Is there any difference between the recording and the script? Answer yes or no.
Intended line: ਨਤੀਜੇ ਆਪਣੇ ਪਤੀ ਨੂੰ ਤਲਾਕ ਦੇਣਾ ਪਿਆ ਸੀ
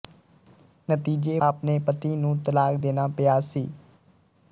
no